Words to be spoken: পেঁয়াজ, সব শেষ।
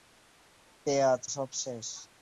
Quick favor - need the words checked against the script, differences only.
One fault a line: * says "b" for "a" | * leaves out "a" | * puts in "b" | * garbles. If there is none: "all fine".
all fine